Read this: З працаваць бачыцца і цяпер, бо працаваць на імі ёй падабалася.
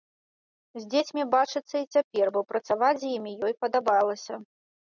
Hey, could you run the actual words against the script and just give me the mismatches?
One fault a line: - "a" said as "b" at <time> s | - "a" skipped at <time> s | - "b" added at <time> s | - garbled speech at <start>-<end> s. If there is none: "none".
- "працаваць" said as "дзецьмі" at 0.9 s
- "на" said as "з" at 3.0 s